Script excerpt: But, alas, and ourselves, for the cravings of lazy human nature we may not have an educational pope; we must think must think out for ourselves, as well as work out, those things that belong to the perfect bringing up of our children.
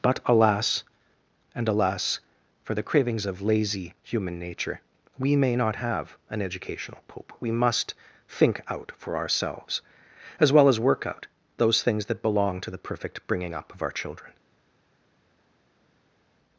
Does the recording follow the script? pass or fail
fail